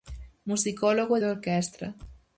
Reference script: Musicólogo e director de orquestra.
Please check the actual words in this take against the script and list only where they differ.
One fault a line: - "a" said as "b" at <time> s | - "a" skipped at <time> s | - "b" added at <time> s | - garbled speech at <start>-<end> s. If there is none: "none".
- "director" skipped at 1.2 s